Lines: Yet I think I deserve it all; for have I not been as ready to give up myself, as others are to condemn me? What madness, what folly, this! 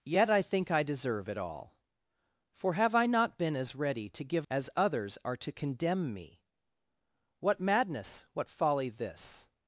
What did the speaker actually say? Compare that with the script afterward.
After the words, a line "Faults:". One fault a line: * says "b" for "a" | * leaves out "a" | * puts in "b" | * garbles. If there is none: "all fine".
Yet I think I deserve it all; for have I not been as ready to give as others are to condemn me? What madness, what folly, this!
Faults:
* leaves out "up myself"